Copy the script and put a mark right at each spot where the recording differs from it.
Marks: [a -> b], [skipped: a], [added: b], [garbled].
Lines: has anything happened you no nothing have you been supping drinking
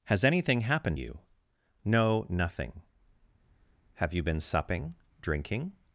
has anything happened you no nothing have you been supping drinking